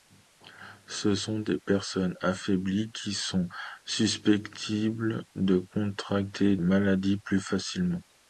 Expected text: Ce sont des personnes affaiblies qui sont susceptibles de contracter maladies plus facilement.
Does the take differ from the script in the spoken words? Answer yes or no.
no